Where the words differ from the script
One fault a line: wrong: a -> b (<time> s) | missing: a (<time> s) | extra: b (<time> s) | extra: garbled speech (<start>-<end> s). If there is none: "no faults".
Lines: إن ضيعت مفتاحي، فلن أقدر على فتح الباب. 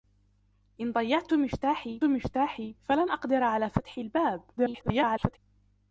extra: مفتاحي (2.0 s)
extra: garbled speech (4.6-5.4 s)